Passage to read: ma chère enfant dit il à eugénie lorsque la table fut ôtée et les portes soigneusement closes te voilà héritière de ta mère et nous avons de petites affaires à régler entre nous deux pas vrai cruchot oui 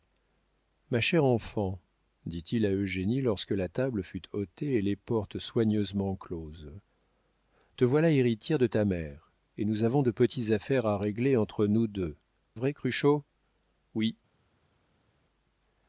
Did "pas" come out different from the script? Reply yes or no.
yes